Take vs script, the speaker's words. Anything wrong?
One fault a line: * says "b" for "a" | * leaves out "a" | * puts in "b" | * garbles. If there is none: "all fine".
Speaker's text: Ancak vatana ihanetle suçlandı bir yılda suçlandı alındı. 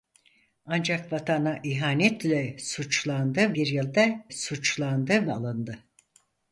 all fine